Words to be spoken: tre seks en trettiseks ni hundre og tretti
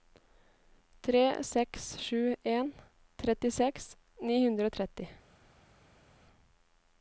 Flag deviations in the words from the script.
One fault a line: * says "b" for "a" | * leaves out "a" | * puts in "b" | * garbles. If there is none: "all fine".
* puts in "sju"